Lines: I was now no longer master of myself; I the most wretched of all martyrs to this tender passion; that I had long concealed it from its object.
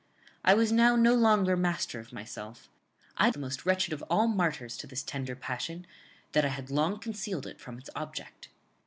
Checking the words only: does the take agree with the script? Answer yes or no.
yes